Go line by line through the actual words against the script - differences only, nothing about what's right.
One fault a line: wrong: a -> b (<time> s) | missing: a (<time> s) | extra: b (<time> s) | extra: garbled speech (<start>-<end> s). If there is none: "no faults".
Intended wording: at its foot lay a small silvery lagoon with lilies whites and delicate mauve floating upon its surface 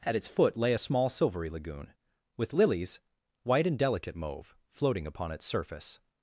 wrong: whites -> white (3.4 s)